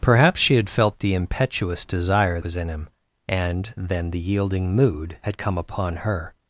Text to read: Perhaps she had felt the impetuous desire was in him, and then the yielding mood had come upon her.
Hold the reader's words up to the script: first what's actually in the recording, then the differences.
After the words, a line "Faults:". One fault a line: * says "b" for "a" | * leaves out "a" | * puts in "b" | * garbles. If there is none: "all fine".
Perhaps she had felt the impetuous desire was in him, and then the yielding mood had come upon her.
Faults:
all fine